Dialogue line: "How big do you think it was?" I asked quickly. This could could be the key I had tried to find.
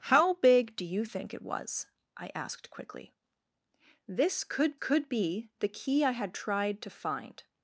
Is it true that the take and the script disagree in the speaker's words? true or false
false